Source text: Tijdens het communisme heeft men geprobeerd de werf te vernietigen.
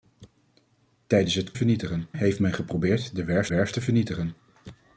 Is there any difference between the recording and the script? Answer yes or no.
yes